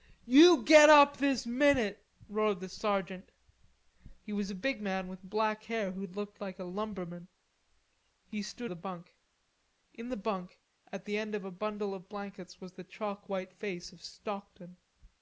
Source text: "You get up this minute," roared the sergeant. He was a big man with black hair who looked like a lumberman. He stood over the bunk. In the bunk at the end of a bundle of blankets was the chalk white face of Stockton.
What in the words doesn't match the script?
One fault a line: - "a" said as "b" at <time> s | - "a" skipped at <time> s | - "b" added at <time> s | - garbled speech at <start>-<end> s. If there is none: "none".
- "over" skipped at 8.7 s